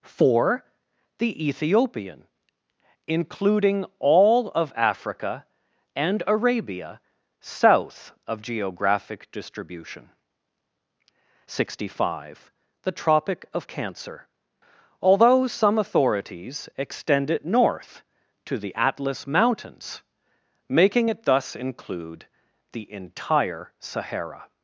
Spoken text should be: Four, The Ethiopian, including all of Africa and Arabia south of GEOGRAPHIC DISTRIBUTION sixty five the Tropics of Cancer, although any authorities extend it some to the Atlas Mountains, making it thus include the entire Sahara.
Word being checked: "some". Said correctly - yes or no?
no